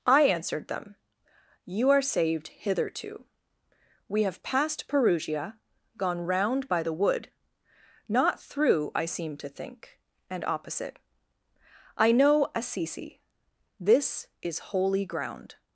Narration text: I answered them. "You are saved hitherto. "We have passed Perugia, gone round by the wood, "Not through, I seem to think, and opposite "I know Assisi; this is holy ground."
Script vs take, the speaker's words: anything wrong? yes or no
no